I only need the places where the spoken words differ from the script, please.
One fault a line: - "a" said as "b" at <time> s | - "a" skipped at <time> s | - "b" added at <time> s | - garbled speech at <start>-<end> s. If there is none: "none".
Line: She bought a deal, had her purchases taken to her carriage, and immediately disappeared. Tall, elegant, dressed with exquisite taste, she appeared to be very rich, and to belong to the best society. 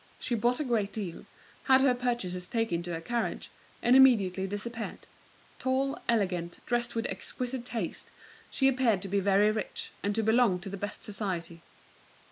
- "great" added at 0.6 s